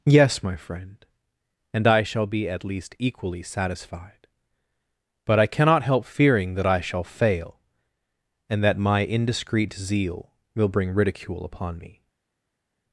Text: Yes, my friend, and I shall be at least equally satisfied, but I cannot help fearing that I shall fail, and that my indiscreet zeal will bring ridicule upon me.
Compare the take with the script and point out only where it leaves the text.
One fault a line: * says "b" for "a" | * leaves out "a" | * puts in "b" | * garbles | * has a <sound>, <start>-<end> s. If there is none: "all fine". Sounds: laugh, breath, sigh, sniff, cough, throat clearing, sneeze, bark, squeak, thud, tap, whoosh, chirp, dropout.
all fine